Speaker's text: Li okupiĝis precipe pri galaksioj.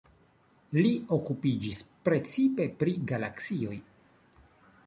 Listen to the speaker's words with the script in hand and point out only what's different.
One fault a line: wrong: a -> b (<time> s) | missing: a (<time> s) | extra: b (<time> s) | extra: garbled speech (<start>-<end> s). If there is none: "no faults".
no faults